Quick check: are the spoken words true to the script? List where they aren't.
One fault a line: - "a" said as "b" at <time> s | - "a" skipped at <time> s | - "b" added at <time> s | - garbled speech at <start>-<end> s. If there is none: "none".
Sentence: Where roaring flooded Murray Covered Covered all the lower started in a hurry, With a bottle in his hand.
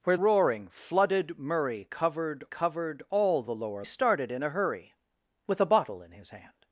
none